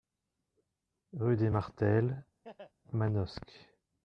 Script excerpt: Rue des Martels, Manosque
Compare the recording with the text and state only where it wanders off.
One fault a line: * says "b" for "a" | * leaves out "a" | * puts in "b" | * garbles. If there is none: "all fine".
all fine